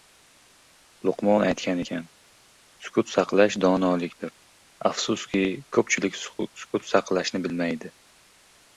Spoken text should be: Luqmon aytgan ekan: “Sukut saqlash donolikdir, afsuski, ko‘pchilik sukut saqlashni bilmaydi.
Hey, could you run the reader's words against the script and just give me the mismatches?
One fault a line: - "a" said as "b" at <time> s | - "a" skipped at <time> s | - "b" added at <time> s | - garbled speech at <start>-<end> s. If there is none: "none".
none